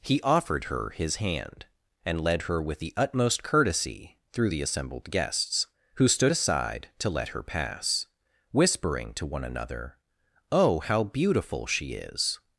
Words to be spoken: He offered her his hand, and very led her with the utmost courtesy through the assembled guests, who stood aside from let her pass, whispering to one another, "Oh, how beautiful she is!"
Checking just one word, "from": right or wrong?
wrong